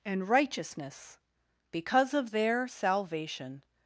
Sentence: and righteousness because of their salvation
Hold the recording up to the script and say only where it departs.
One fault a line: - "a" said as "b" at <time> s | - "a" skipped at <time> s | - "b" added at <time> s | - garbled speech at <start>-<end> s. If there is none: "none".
none